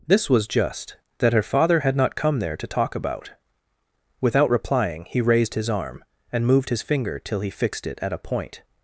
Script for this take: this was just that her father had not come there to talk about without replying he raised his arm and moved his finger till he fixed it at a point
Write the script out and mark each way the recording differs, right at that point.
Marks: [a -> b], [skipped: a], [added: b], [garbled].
this was just that her father had not come there to talk about without replying he raised his arm and moved his finger till he fixed it at a point